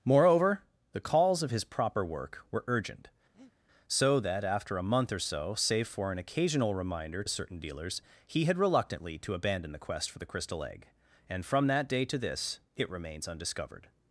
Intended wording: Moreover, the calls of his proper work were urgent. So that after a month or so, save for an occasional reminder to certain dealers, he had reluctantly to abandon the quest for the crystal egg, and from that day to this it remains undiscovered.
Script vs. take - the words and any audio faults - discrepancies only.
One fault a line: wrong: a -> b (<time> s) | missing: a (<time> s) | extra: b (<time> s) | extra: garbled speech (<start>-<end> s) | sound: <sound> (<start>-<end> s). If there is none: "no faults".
sound: breath (3.3-3.5 s)
missing: to (7.2 s)